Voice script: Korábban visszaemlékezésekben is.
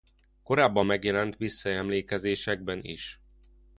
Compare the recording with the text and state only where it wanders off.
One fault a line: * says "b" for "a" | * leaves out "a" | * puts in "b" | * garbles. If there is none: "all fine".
* puts in "megjelent"